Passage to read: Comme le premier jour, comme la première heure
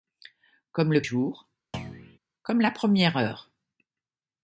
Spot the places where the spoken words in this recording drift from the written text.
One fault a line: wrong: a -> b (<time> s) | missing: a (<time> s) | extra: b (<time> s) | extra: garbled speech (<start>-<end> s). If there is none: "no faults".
missing: premier (1.1 s)